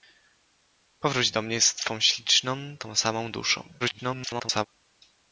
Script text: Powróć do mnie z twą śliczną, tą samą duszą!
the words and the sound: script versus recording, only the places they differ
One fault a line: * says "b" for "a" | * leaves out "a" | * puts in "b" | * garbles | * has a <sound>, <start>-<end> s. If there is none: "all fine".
* garbles